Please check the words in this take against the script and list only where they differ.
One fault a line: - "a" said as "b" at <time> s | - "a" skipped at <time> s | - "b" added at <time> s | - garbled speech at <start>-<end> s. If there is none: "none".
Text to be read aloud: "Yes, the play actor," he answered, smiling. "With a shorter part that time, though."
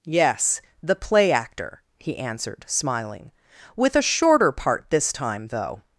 - "that" said as "this" at 4.9 s